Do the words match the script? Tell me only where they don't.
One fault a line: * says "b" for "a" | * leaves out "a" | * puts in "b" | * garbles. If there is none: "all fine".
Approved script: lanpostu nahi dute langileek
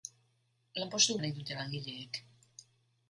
all fine